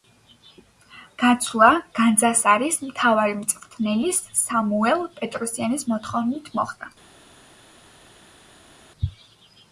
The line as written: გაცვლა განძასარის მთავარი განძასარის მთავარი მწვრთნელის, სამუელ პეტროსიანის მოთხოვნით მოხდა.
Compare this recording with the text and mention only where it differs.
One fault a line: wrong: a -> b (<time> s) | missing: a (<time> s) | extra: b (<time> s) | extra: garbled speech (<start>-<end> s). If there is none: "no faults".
missing: განძასარის მთავარი (3.4 s)